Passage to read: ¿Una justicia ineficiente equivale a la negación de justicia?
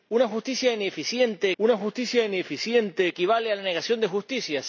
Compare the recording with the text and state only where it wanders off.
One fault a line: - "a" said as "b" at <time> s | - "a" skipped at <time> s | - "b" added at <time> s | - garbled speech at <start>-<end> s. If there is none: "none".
- "una justicia ineficiente" added at 1.6 s